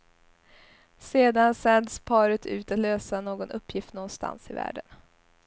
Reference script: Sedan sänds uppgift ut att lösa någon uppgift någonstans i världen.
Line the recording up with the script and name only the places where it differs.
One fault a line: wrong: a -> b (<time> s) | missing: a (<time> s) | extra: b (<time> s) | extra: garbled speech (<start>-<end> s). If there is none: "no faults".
wrong: uppgift -> paret (2.0 s)